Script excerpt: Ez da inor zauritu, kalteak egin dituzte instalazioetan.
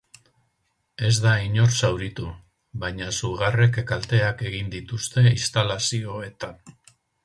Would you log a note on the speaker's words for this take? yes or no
yes